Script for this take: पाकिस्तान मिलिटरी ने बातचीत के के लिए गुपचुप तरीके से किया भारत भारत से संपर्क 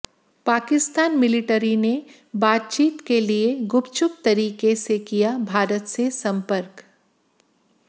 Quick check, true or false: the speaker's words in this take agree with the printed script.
false